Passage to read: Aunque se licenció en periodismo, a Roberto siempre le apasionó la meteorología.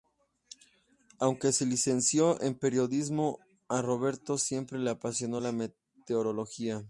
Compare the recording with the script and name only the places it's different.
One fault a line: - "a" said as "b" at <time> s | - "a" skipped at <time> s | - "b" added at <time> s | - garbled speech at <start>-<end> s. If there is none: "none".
none